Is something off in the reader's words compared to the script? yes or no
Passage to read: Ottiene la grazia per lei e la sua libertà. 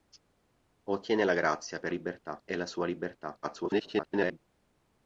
yes